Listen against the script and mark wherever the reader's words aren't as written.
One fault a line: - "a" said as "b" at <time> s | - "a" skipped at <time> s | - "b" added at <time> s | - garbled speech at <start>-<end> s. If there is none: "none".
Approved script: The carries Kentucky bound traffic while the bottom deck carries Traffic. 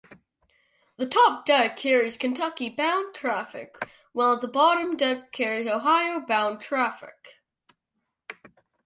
- "top deck" added at 1.1 s
- "Ohio bound" added at 5.7 s